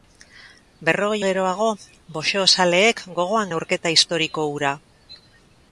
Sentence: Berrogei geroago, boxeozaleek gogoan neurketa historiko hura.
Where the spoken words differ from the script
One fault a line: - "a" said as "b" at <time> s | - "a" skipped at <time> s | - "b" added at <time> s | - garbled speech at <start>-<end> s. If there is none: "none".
none